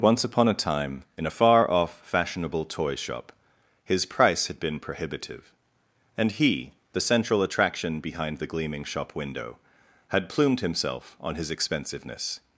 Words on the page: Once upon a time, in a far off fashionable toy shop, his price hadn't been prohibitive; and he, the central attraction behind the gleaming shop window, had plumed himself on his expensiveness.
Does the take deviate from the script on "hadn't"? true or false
true